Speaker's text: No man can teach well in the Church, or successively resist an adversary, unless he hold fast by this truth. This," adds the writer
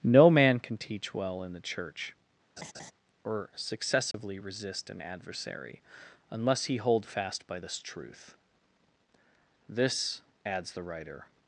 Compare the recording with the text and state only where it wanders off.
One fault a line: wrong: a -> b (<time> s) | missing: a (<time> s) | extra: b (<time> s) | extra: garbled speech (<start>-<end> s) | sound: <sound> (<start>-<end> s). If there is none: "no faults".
sound: laugh (2.6-2.9 s)
sound: dropout (4.1-4.1 s)